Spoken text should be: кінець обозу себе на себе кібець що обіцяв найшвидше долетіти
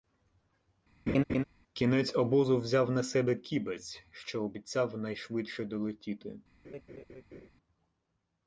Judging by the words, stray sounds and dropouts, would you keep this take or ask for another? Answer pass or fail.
fail